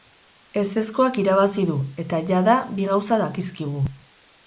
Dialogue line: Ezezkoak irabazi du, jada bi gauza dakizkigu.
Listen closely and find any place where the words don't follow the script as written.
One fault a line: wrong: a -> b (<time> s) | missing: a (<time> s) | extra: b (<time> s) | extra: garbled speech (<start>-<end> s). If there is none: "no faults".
extra: eta (2.1 s)